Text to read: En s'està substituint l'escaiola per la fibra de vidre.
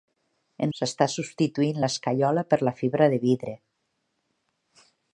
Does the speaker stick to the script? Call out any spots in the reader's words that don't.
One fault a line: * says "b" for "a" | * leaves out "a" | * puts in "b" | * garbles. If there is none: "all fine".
all fine